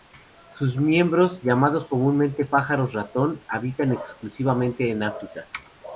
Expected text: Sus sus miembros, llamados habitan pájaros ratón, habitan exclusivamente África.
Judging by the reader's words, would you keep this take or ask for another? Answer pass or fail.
fail